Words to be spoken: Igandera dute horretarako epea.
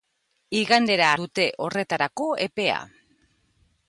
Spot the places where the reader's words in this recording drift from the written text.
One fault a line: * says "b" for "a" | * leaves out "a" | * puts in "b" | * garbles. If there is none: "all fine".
all fine